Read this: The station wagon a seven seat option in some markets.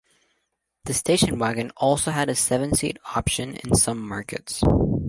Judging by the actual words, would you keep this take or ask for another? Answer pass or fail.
fail